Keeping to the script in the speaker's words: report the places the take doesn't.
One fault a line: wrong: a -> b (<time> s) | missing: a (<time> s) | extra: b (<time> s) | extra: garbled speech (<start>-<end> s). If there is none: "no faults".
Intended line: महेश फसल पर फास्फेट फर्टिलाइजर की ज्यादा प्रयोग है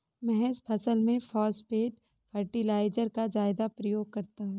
wrong: पर -> में (1.0 s)
wrong: की -> का (3.1 s)
extra: करता (4.1 s)